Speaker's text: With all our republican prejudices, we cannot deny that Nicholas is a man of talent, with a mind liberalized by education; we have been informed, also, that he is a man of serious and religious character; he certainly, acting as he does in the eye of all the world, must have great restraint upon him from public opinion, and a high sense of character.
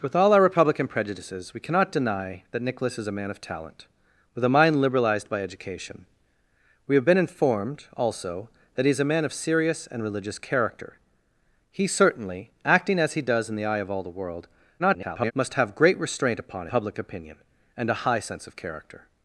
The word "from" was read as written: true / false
false